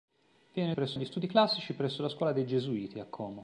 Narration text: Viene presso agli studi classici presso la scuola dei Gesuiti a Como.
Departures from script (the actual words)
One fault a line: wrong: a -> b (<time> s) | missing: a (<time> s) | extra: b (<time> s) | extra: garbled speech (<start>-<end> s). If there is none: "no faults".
no faults